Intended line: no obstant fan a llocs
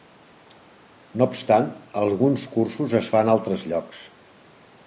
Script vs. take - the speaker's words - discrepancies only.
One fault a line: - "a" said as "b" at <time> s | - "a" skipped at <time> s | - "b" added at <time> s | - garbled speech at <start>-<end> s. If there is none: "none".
- "alguns cursos es" added at 2.0 s
- "altres" added at 3.4 s